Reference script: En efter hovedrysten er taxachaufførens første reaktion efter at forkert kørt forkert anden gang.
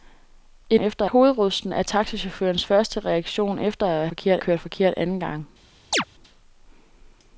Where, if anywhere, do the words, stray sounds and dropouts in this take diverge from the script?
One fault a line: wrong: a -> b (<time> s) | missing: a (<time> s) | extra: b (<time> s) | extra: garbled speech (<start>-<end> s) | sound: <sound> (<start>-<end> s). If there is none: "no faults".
sound: chirp (5.9-6.0 s)